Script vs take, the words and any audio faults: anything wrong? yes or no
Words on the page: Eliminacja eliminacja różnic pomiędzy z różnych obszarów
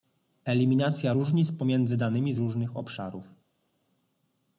yes